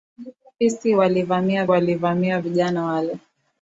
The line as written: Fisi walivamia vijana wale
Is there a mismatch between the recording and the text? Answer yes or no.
yes